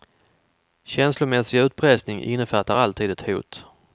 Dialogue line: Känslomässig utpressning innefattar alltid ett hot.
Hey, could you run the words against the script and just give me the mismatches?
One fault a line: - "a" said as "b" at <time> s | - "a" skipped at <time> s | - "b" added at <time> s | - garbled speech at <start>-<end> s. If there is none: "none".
none